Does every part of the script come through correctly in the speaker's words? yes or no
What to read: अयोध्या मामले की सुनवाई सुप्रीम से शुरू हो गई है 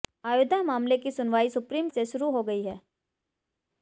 yes